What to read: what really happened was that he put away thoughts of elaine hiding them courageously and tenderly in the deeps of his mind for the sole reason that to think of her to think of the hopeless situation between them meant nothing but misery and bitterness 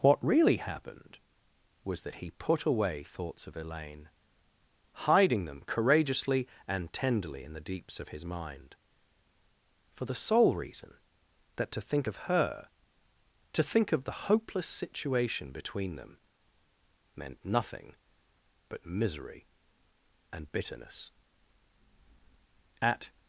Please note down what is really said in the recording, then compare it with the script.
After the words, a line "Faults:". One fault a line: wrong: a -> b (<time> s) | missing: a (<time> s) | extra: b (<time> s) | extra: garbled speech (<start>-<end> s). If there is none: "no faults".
what really happened was that he put away thoughts of elaine hiding them courageously and tenderly in the deeps of his mind for the sole reason that to think of her to think of the hopeless situation between them meant nothing but misery and bitterness at
Faults:
extra: at (22.8 s)